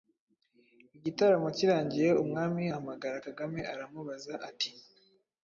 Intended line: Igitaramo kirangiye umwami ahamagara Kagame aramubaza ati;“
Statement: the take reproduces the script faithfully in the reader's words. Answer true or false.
true